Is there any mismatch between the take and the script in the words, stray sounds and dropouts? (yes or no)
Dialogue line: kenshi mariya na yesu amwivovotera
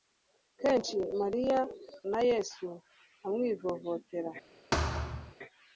yes